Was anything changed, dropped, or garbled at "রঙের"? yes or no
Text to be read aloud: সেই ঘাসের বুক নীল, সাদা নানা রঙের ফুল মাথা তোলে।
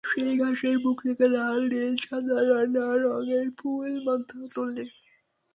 no